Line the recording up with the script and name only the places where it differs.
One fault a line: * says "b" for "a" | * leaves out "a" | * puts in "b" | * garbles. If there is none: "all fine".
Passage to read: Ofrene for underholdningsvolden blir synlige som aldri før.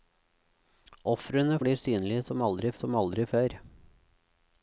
* says "blir synlige som aldri" for "for underholdningsvolden blir synlige"